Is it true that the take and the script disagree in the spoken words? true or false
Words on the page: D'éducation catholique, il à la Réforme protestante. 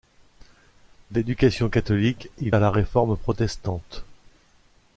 false